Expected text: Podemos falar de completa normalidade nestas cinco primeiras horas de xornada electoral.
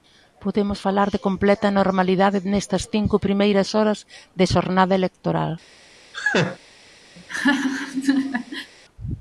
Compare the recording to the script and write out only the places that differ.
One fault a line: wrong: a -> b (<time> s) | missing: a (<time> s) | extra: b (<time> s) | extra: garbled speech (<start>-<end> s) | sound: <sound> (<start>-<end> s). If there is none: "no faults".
sound: laugh (6.1-6.6 s)
sound: laugh (7.2-8.7 s)